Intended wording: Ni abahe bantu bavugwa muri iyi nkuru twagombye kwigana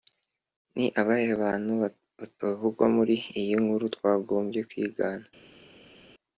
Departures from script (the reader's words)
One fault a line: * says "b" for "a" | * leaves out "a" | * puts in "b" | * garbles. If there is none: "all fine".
all fine